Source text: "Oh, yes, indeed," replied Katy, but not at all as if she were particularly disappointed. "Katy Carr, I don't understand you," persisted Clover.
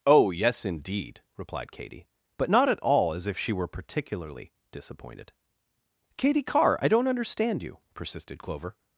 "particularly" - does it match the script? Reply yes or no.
yes